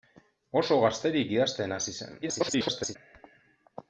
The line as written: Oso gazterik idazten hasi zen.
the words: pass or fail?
fail